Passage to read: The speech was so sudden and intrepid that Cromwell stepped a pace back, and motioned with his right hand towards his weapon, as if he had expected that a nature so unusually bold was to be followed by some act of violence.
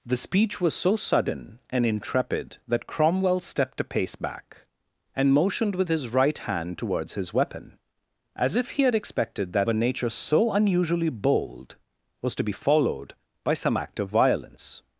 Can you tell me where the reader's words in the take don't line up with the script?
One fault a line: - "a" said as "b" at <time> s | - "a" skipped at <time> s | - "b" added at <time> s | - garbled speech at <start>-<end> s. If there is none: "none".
none